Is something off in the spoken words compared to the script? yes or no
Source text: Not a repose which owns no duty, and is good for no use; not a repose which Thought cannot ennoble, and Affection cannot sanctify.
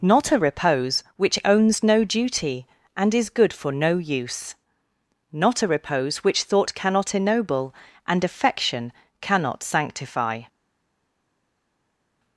no